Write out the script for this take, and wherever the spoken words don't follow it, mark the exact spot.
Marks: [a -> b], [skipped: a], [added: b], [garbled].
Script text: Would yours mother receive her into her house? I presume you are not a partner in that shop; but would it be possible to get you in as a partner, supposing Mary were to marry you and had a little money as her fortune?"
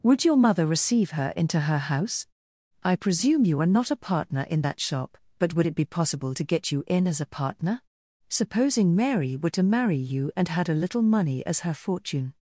Would [yours -> your] mother receive her into her house? I presume you are not a partner in that shop; but would it be possible to get you in as a partner, supposing Mary were to marry you and had a little money as her fortune?"